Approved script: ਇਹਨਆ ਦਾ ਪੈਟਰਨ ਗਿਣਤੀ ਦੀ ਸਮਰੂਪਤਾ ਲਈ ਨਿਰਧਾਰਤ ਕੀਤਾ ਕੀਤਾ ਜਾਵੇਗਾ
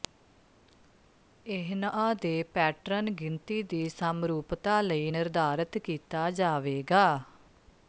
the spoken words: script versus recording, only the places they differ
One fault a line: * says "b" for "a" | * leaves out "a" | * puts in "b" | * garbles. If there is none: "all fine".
* says "ਦੇ" for "ਦਾ"
* leaves out "ਕੀਤਾ"